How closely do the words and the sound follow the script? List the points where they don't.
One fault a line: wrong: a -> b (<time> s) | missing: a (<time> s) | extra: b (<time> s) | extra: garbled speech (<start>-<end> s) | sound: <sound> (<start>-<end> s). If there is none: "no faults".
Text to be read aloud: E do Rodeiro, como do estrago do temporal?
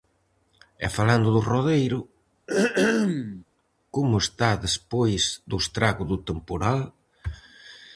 extra: falando (1.0 s)
sound: throat clearing (2.5-3.4 s)
extra: está despois (4.2 s)